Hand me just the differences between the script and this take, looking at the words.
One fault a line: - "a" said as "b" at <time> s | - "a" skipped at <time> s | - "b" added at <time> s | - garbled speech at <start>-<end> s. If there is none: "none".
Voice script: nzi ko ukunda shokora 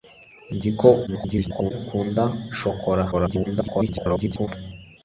- garbled speech at 1.1-1.7 s
- garbled speech at 3.1-4.5 s